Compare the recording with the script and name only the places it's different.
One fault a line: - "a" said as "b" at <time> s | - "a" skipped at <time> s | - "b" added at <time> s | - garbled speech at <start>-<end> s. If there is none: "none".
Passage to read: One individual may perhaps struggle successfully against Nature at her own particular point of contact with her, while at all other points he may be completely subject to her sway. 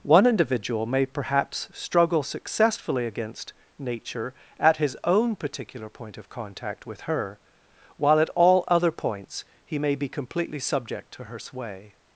- "her" said as "his" at 4.8 s